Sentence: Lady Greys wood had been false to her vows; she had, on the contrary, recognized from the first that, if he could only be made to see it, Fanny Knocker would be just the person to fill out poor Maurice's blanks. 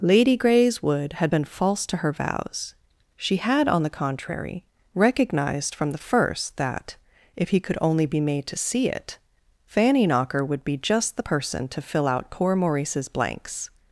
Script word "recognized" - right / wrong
right